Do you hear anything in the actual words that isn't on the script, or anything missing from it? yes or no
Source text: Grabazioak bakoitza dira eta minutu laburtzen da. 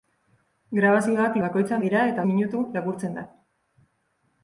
no